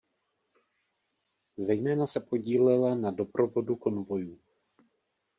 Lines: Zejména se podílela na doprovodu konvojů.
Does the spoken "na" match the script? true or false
true